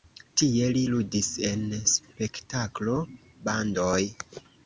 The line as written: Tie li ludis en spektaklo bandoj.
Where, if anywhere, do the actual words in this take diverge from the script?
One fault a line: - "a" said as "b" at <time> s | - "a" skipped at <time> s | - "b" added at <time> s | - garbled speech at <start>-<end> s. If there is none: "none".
none